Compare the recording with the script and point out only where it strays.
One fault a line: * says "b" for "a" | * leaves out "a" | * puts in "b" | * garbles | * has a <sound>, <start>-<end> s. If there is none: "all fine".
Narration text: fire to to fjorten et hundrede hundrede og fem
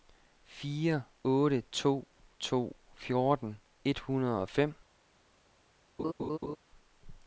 * puts in "otte"
* leaves out "hundrede"
* has a laugh, 6.0-6.6 s